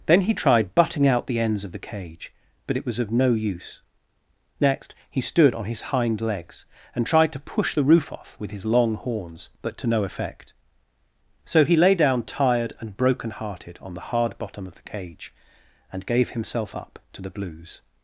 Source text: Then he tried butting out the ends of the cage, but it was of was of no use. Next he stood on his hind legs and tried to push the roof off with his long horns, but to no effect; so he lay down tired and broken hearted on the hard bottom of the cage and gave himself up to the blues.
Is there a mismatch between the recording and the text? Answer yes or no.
yes